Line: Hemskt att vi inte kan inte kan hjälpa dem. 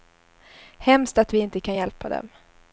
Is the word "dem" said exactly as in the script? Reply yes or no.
yes